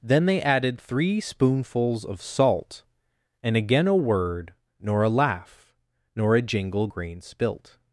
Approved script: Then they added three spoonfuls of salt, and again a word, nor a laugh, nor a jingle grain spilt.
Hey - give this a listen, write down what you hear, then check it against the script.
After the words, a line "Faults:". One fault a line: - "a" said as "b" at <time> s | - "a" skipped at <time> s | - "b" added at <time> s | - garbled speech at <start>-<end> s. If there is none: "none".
Then they added three spoonfuls of salt, and again a word, nor a laugh, nor a jingle grain spilt.
Faults:
none